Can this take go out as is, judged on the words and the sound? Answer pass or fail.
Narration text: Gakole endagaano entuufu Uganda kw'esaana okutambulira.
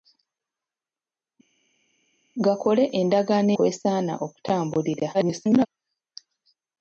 fail